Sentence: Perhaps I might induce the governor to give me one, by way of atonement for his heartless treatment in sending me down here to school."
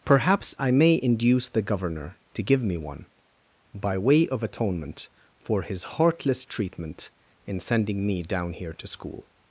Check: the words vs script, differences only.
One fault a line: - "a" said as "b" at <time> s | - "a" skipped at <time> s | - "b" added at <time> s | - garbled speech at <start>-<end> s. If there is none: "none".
- "might" said as "may" at 0.7 s